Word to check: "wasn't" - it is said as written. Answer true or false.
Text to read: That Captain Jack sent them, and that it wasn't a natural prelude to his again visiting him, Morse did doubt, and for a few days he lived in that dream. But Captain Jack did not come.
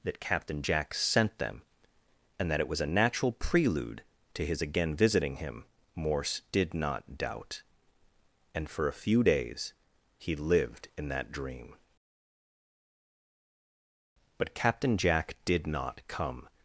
false